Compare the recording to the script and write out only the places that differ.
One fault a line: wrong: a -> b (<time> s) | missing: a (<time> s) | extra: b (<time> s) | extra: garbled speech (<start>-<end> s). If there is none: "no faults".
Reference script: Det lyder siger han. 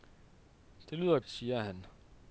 no faults